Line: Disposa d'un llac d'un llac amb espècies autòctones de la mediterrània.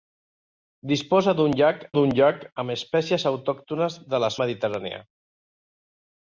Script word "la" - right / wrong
right